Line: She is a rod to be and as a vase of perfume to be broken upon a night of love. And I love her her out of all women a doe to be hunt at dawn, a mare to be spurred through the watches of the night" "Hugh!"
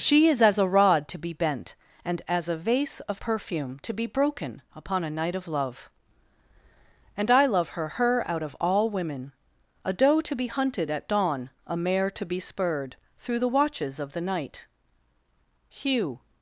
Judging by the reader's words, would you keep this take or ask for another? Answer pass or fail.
fail